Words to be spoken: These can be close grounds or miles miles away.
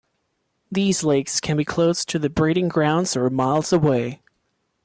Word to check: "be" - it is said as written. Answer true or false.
true